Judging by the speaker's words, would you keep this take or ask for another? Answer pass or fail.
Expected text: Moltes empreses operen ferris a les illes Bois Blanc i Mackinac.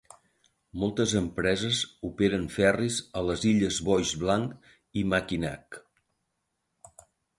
pass